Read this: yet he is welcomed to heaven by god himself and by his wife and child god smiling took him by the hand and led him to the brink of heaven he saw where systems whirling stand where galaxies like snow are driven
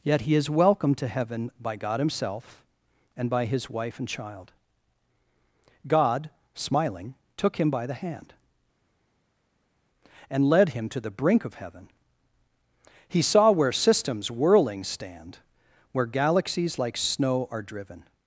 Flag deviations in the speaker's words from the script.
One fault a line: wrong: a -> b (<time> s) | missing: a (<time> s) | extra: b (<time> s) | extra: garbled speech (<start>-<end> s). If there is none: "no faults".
no faults